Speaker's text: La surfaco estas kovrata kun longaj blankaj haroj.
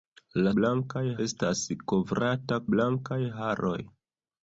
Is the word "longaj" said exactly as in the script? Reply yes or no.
no